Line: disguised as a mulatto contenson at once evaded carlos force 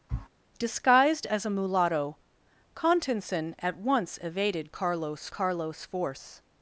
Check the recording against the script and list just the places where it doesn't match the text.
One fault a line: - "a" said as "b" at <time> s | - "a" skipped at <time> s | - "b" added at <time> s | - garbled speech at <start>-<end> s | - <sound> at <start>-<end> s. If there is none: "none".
- sniff at 0.1-0.3 s
- "carlos" added at 5.3 s